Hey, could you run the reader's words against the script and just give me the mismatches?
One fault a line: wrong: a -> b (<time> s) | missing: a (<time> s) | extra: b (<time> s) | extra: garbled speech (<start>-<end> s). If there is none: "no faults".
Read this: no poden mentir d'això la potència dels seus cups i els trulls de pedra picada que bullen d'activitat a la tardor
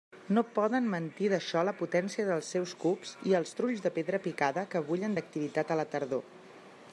no faults